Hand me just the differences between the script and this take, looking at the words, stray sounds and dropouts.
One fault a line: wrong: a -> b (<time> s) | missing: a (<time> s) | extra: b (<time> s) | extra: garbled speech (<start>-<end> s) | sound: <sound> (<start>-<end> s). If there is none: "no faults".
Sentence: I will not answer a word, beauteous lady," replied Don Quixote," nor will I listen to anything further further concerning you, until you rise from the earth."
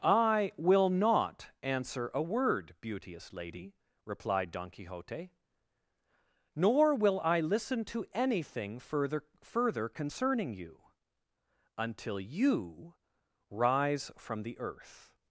no faults